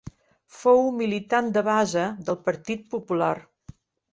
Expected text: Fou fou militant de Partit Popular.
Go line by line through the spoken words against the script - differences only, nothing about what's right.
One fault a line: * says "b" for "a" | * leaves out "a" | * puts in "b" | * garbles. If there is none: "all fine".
* leaves out "fou"
* puts in "base del"